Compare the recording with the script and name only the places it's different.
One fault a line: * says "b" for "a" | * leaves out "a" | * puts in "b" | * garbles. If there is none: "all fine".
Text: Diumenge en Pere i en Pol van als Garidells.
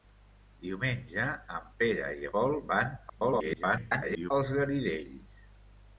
* leaves out "en"
* garbles